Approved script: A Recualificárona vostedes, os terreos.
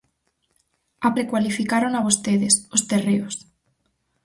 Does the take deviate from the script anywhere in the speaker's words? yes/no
no